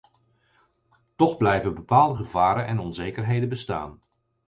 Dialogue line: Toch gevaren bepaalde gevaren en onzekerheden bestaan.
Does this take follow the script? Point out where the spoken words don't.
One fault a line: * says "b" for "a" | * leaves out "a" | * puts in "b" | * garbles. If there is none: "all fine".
* says "blijven" for "gevaren"